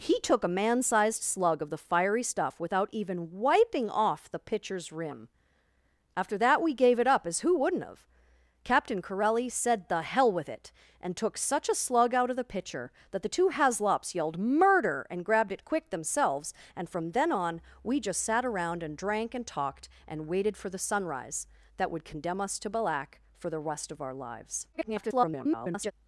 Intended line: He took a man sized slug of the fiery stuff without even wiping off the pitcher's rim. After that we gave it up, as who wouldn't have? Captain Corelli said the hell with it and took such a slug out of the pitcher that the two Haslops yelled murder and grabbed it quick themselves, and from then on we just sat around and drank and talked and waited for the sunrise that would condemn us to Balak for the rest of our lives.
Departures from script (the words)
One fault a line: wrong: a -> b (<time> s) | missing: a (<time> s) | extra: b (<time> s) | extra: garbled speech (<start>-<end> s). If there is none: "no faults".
extra: garbled speech (24.7-25.9 s)